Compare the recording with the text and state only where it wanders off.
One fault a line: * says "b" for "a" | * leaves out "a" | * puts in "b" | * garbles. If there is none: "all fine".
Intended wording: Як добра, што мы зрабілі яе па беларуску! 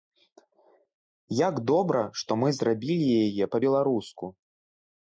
all fine